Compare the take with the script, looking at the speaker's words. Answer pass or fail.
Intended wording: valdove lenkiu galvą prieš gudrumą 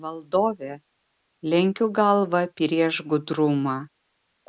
pass